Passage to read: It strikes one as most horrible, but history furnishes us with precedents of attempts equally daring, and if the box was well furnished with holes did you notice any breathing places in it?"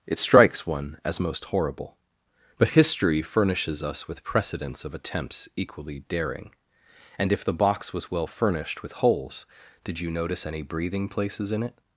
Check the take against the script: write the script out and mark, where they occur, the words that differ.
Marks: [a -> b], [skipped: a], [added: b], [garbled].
It strikes one as most horrible, but history furnishes us with precedents of attempts equally daring, and if the box was well furnished with holes did you notice any breathing places in it?"